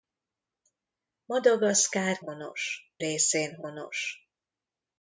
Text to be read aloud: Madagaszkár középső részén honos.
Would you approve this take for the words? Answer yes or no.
no